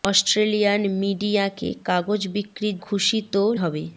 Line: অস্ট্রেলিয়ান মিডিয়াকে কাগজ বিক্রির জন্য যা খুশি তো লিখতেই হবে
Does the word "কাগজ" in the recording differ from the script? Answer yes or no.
no